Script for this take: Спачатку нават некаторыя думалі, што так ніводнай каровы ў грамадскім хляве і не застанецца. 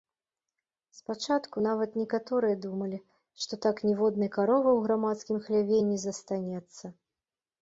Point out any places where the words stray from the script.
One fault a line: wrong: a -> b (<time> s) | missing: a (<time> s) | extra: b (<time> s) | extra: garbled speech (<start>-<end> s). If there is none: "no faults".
no faults